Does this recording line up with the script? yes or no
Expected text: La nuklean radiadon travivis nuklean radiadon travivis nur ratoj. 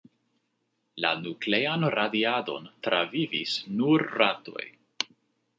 no